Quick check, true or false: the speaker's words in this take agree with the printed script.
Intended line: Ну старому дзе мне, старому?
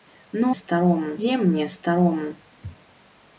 true